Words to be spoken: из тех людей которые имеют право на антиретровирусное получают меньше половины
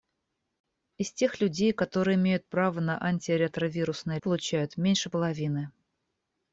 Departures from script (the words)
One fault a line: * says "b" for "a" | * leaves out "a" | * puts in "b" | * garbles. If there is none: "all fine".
all fine